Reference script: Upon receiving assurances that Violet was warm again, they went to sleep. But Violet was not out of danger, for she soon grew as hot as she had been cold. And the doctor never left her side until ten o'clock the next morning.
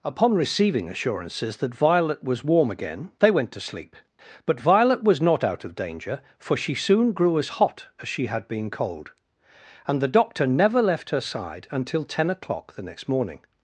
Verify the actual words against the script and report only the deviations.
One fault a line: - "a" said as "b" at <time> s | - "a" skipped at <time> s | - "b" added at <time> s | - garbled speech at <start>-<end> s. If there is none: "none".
none